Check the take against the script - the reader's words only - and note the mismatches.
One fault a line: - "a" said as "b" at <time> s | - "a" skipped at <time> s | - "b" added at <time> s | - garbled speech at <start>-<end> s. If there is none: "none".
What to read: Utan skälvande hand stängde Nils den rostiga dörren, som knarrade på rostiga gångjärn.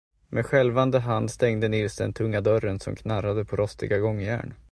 - "Utan" said as "Med" at 0.3 s
- "rostiga" said as "tunga" at 2.1 s